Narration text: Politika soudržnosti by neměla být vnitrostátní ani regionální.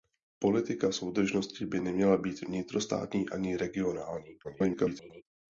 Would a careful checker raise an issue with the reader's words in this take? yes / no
yes